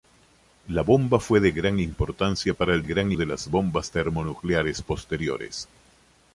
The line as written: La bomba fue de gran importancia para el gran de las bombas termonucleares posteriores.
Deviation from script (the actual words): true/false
false